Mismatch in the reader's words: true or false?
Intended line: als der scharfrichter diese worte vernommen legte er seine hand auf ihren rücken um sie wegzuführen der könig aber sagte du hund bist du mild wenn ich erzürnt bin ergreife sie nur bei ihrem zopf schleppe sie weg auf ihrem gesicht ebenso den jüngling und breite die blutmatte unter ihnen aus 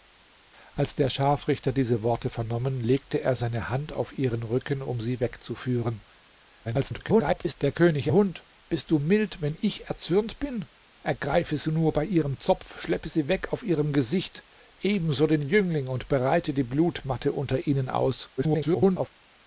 true